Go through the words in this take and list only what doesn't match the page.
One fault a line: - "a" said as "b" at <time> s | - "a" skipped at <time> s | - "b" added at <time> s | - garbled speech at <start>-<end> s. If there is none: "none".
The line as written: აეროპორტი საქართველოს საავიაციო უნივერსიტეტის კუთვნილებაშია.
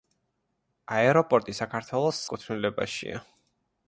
- "საავიაციო უნივერსიტეტის" skipped at 2.2 s